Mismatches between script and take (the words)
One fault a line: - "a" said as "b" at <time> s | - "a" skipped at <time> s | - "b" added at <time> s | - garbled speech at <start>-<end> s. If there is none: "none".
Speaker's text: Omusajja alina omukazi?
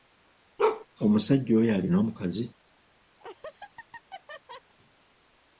- "oyo" added at 1.6 s